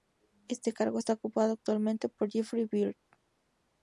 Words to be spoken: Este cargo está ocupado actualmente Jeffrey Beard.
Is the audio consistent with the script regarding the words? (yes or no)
no